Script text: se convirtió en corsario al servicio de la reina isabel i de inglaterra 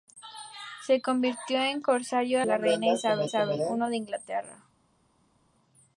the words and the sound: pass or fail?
fail